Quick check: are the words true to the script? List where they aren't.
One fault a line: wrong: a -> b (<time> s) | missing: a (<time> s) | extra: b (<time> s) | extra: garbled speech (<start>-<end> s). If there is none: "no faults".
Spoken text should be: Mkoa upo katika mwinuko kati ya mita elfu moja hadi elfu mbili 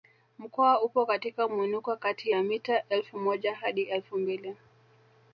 no faults